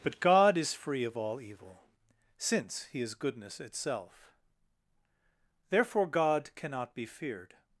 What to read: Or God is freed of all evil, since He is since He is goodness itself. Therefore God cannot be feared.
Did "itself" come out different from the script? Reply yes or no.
no